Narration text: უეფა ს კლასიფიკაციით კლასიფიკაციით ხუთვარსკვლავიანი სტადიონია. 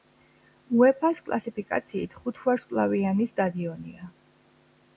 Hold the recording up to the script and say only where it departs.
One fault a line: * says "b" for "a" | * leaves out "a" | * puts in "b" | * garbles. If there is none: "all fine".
* leaves out "კლასიფიკაციით"